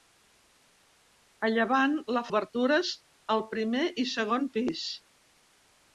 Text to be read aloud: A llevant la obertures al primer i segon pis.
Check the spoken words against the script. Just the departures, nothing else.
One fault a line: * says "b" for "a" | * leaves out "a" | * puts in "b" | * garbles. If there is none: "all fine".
all fine